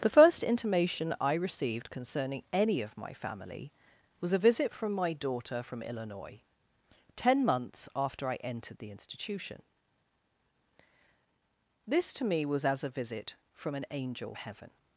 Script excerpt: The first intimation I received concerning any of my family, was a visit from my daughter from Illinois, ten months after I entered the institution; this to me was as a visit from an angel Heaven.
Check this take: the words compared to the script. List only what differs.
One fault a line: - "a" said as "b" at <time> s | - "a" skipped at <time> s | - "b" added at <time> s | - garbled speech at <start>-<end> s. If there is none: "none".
none